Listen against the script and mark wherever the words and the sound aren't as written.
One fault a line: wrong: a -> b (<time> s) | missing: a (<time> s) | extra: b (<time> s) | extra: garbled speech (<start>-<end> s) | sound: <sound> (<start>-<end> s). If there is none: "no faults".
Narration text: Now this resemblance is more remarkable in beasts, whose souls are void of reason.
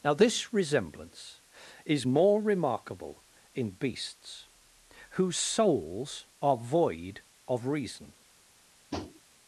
sound: tap (8.9-9.2 s)